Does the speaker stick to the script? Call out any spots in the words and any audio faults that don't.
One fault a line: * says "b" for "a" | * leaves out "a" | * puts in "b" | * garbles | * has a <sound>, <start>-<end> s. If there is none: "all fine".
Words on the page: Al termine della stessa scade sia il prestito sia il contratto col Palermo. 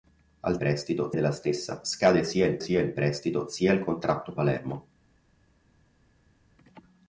* says "prestito" for "termine"
* puts in "sia il"
* leaves out "col"